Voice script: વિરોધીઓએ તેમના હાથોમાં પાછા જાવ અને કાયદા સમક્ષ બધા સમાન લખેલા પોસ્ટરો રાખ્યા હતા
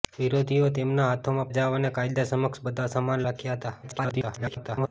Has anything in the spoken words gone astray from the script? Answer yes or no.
yes